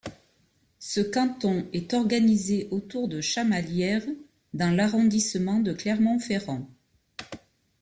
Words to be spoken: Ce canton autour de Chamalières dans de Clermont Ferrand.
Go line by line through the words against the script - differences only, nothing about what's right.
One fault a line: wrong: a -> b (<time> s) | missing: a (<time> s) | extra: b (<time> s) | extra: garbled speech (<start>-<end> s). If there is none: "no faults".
extra: est organisé (1.7 s)
extra: l'arrondissement (4.8 s)